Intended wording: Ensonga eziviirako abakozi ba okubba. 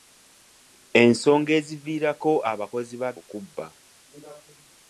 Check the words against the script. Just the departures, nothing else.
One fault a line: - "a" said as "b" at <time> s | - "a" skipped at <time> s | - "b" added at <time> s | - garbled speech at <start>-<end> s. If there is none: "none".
none